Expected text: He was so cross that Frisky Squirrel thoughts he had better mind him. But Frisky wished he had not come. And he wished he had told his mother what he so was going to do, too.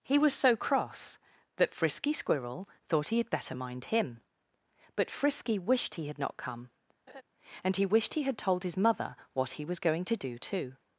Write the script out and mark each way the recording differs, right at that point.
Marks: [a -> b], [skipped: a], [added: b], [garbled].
He was so cross that Frisky Squirrel [thoughts -> thought] he had better mind him. But Frisky wished he had not come. And he wished he had told his mother what he [skipped: so] was going to do, too.